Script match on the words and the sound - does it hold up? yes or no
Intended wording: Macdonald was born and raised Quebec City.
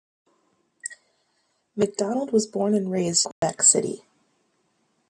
no